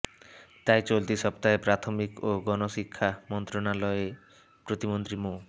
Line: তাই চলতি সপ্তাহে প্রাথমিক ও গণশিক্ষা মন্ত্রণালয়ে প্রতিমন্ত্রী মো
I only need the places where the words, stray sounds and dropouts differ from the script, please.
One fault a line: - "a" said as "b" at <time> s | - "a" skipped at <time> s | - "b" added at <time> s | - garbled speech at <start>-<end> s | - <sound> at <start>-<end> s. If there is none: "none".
none